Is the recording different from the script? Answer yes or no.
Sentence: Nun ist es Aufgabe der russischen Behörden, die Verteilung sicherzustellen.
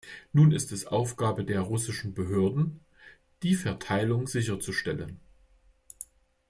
no